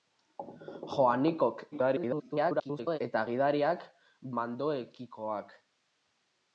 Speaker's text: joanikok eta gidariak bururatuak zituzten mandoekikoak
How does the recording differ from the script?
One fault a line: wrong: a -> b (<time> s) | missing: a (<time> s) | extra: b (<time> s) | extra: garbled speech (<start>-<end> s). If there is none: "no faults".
extra: garbled speech (1.7-3.0 s)
missing: bururatuak zituzten (3.9 s)